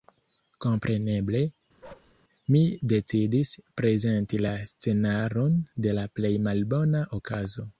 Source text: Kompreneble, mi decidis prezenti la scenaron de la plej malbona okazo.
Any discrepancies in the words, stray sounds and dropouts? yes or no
yes